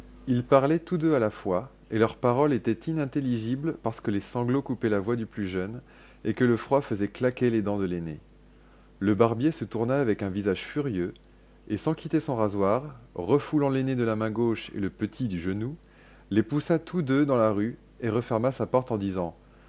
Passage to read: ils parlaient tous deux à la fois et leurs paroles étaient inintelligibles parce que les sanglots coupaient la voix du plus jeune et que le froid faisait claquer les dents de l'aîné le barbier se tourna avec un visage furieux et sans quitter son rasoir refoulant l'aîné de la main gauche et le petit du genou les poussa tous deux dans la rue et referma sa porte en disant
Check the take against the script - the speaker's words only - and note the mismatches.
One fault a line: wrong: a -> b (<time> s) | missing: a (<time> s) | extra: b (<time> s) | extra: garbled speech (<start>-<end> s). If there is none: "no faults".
no faults